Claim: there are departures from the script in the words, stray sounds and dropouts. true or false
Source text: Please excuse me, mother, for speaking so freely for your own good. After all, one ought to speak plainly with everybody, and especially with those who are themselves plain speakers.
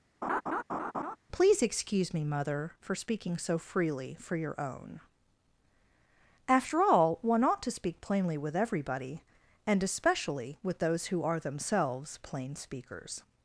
true